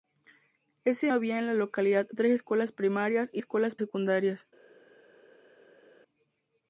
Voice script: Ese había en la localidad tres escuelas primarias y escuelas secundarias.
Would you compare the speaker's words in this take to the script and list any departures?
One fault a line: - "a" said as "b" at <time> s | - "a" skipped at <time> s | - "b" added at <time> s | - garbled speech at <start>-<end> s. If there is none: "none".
none